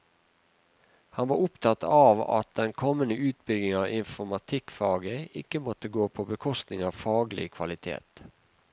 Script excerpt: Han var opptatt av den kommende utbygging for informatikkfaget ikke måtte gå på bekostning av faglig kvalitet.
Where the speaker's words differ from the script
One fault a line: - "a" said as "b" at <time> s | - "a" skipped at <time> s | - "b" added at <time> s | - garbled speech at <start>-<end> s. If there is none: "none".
- "at" added at 2.4 s
- "for" said as "av" at 3.8 s